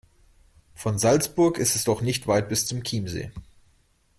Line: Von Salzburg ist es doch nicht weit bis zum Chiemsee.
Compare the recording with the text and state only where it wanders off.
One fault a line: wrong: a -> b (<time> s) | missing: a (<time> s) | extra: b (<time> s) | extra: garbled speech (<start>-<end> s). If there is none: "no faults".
no faults